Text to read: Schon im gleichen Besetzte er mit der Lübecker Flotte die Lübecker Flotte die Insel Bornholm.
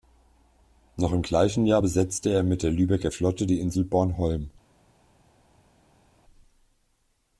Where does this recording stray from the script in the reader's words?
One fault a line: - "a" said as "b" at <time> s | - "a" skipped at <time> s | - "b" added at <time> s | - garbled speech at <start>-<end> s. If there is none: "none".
- "Schon" said as "Noch" at 1.0 s
- "Jahr" added at 1.7 s
- "Lübecker Flotte die" skipped at 3.6 s